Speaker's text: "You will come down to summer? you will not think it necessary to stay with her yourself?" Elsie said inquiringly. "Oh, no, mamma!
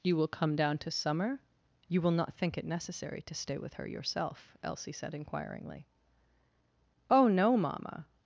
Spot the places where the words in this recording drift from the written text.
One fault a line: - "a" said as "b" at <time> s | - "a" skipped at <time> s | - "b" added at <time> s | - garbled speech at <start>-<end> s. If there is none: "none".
none